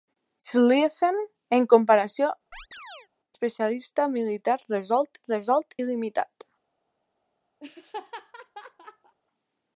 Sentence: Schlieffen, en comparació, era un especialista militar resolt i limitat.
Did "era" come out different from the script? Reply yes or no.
yes